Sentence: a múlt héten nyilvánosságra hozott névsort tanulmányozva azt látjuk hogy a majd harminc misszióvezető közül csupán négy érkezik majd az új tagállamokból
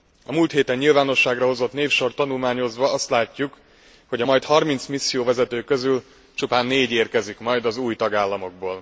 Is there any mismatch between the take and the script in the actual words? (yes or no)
no